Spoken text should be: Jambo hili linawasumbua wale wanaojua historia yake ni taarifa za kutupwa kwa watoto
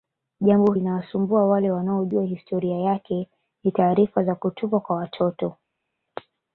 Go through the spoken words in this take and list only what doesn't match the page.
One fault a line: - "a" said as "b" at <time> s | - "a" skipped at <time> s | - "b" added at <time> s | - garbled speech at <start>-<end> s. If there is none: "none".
- "hili" skipped at 0.7 s